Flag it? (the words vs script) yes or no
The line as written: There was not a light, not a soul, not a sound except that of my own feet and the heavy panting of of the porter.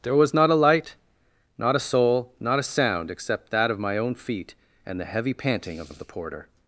no